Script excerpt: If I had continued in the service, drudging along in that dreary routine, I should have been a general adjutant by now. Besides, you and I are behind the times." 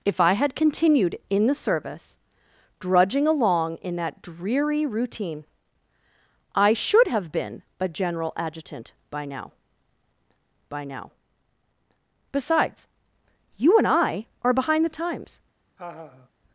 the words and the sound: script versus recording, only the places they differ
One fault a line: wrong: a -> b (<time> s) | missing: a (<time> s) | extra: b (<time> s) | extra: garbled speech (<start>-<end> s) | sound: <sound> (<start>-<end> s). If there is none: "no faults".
extra: by now (10.7 s)
sound: laugh (15.8-16.3 s)